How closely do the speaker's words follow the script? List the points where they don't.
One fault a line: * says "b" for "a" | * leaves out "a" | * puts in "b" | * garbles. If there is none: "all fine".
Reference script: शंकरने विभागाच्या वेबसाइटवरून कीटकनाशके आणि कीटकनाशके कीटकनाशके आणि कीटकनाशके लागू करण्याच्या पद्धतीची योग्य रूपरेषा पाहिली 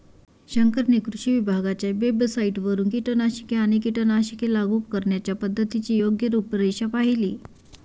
* puts in "कृषी"
* leaves out "कीटकनाशके आणि कीटकनाशके"